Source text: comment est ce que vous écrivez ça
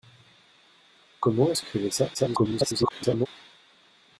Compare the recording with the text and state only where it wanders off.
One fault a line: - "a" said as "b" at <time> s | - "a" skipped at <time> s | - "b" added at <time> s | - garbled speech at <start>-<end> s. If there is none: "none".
- "que vous" skipped at 1.6 s
- garbled speech at 2.1-3.3 s